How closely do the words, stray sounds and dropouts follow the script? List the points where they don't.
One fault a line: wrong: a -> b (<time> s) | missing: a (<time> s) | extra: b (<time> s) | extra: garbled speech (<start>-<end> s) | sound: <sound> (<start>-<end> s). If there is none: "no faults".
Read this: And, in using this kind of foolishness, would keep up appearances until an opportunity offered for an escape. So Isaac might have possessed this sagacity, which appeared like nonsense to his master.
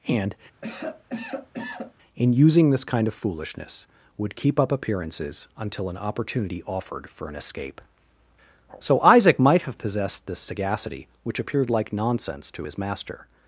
sound: cough (0.6-1.9 s)